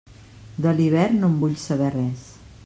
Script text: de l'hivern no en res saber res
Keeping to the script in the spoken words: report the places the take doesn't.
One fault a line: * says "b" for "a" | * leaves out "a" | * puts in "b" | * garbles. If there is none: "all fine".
* says "vull" for "res"